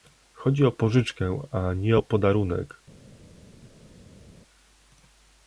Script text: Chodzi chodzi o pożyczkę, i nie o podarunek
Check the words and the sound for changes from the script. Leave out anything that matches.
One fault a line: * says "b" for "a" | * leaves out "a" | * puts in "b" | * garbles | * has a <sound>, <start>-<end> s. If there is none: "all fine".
* leaves out "chodzi"
* says "a" for "i"